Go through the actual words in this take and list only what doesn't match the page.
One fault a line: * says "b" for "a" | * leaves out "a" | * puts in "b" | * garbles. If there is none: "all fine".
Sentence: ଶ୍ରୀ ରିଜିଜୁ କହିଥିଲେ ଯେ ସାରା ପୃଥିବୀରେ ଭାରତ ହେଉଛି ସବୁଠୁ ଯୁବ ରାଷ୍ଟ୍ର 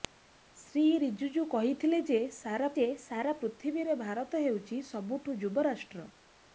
* puts in "ଯେ ସାରା"